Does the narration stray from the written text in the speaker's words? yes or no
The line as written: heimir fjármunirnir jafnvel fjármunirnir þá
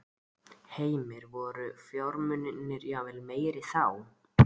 yes